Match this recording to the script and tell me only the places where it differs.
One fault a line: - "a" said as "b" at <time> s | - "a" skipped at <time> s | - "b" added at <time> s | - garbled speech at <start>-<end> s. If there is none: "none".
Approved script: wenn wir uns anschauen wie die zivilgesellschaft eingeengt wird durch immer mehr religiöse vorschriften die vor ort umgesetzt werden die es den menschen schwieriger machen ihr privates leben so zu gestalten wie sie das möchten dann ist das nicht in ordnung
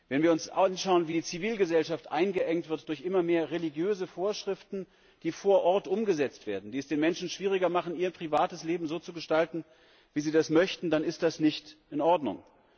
none